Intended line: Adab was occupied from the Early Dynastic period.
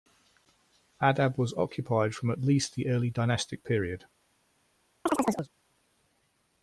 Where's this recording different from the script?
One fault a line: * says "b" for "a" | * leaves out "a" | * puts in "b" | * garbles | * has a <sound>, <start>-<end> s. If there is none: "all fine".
* puts in "at least"
* has a chirp, 5.1-5.5 s